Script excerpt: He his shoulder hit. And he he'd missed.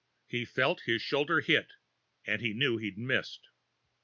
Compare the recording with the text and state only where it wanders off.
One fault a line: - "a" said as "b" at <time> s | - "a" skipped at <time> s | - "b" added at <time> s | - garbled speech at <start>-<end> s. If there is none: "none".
- "felt" added at 0.5 s
- "knew" added at 2.5 s